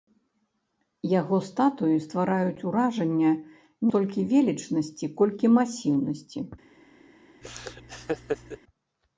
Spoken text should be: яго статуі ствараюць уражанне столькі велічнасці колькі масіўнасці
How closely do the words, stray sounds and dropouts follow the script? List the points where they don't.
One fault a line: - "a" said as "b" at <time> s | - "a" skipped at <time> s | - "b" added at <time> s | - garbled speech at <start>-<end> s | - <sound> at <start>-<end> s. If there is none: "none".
- laugh at 7.4-8.6 s